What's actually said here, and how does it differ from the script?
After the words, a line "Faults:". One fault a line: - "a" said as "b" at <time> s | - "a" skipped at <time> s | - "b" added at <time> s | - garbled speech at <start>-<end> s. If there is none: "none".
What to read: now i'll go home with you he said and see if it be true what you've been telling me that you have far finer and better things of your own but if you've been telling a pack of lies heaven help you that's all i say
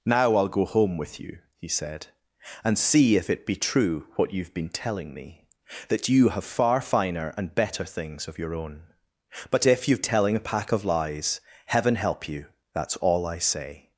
now i'll go home with you he said and see if it be true what you've been telling me that you have far finer and better things of your own but if you've telling a pack of lies heaven help you that's all i say
Faults:
- "been" skipped at 10.0 s